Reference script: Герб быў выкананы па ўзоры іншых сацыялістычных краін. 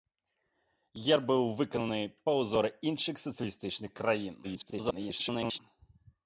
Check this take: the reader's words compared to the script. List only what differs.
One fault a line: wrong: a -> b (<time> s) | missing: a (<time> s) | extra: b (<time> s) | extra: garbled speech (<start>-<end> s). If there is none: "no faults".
extra: garbled speech (4.4-5.6 s)